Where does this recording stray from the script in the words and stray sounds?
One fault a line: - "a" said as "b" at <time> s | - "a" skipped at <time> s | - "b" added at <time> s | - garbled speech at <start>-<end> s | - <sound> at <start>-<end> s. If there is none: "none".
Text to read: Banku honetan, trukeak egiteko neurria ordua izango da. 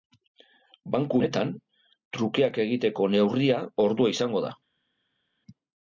none